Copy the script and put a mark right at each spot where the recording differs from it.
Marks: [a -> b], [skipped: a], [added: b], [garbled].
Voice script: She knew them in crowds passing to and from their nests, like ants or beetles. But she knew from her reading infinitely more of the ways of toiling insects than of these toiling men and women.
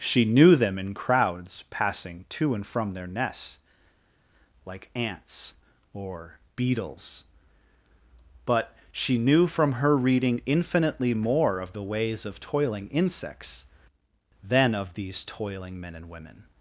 She knew them in crowds passing to and from their nests, like ants or beetles. But she knew from her reading infinitely more of the ways of toiling insects than of these toiling men and women.